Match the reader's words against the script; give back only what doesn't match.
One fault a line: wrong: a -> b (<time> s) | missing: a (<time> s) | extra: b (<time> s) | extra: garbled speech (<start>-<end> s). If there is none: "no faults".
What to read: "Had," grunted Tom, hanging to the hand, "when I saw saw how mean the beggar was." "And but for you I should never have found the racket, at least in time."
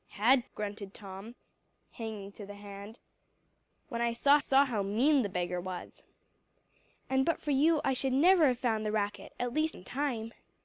no faults